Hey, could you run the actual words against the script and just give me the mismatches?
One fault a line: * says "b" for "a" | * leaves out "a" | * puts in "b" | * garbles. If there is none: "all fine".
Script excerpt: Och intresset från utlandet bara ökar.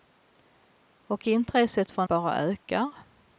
* leaves out "utlandet"